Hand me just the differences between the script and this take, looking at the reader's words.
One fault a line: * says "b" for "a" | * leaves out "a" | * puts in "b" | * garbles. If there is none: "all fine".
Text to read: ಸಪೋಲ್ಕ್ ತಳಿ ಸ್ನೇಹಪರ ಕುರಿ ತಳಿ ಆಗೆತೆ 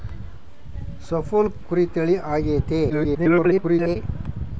* leaves out "ತಳಿ ಸ್ನೇಹಪರ"
* garbles